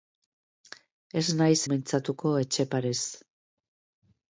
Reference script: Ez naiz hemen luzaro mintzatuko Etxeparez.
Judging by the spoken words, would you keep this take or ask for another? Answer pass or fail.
fail